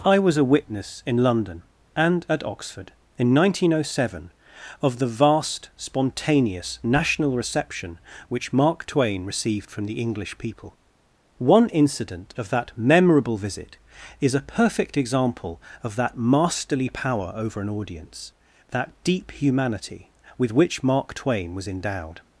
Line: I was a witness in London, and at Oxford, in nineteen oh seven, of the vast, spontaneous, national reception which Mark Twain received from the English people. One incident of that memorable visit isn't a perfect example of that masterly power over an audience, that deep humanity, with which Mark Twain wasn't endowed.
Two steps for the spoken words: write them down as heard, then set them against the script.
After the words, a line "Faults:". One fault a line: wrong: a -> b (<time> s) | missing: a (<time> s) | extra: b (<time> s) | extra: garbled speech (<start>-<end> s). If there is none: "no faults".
I was a witness in London, and at Oxford, in nineteen oh seven, of the vast, spontaneous, national reception which Mark Twain received from the English people. One incident of that memorable visit is a perfect example of that masterly power over an audience, that deep humanity, with which Mark Twain was endowed.
Faults:
wrong: isn't -> is (14.2 s)
wrong: wasn't -> was (21.5 s)